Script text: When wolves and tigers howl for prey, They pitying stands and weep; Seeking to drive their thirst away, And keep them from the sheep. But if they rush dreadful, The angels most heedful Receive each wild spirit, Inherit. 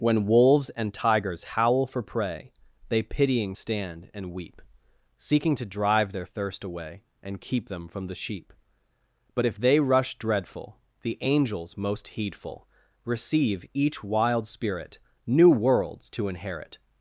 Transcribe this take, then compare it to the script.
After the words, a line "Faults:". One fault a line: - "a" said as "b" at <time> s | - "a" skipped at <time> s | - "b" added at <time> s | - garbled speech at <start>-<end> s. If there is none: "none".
When wolves and tigers howl for prey, They pitying stand and weep; Seeking to drive their thirst away, And keep them from the sheep. But if they rush dreadful, The angels most heedful Receive each wild spirit, New worlds to inherit.
Faults:
- "stands" said as "stand" at 3.5 s
- "New worlds to" added at 15.2 s